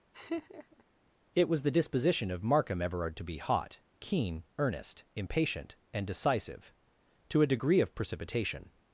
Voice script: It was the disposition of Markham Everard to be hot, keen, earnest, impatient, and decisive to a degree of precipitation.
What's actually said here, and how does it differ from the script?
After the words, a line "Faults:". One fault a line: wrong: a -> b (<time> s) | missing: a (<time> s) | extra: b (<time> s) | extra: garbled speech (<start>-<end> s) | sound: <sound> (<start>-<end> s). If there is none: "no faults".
It was the disposition of Markham Everard to be hot, keen, earnest, impatient, and decisive to a degree of precipitation.
Faults:
sound: laugh (0.1-0.8 s)